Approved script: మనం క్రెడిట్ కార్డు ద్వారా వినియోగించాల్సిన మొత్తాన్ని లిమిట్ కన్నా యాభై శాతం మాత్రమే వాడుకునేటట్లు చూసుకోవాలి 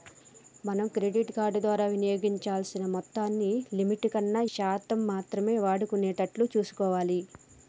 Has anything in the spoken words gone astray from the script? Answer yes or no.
yes